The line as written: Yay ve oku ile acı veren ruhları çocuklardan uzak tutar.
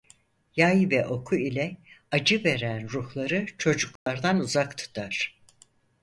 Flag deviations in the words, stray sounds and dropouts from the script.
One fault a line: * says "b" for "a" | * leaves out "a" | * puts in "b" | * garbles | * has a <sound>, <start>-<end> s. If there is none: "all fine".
* has a dropout, 4.0-4.1 s